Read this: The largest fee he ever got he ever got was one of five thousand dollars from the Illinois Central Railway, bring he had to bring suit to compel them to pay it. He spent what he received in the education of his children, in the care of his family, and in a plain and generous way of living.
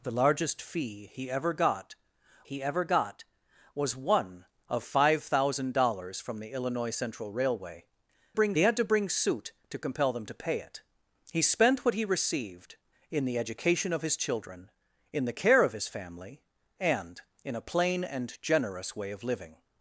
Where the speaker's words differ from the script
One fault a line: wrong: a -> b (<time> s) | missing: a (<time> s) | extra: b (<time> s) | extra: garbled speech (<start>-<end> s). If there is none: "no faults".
no faults